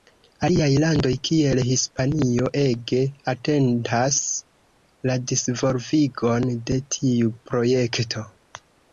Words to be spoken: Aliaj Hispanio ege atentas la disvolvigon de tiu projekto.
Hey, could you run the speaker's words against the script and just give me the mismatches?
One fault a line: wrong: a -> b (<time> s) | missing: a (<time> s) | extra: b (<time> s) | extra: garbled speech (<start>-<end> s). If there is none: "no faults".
extra: landoj kiel (0.8 s)